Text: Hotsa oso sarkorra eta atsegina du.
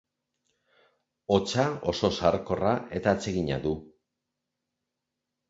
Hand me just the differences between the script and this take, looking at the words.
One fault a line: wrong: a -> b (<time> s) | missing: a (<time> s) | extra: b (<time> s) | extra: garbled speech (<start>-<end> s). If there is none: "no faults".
no faults